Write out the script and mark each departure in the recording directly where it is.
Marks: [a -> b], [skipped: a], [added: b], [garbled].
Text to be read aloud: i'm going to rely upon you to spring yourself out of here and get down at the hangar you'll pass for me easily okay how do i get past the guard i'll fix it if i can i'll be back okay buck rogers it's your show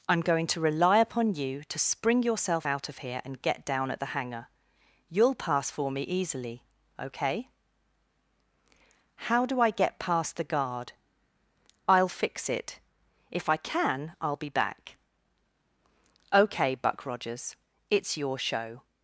i'm going to rely upon you to spring yourself out of here and get down at the hangar you'll pass for me easily okay how do i get past the guard i'll fix it if i can i'll be back okay buck rogers it's your show